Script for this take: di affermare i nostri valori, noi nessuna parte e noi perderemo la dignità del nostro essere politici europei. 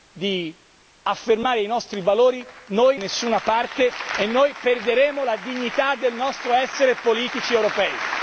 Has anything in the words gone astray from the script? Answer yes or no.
no